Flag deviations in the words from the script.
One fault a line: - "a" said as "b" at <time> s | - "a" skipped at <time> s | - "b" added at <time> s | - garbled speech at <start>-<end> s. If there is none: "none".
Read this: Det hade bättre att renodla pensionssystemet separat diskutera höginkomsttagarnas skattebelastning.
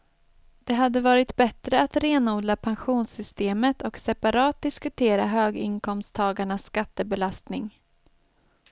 - "varit" added at 1.0 s
- "och" added at 3.8 s